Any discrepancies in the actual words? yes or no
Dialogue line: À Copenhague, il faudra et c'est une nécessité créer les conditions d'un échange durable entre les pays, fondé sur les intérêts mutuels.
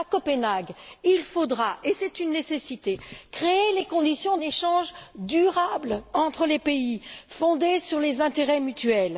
yes